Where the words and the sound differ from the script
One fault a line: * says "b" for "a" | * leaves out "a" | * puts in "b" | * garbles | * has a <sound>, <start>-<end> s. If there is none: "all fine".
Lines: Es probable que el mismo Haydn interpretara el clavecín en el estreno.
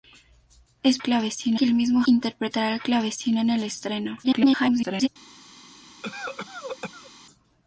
* says "clavecín" for "probable"
* leaves out "Haydn"
* garbles
* has a cough, 6.0-7.1 s